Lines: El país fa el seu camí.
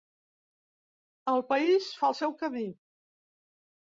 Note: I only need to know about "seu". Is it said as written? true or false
true